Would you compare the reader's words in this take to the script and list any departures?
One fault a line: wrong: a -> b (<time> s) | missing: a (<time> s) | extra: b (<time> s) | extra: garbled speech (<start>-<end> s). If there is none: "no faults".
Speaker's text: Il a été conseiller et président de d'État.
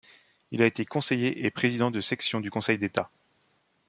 extra: section du Conseil (2.0 s)